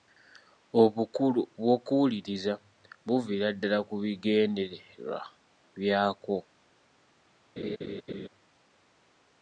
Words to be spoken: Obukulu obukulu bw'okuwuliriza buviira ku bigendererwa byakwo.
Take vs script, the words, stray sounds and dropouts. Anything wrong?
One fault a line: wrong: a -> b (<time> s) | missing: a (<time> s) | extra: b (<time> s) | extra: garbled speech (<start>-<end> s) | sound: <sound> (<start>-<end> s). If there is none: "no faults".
missing: obukulu (1.4 s)
extra: ddala (3.5 s)
sound: laugh (7.6-8.3 s)